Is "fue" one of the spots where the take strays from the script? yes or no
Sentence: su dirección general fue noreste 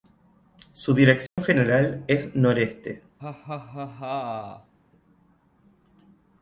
yes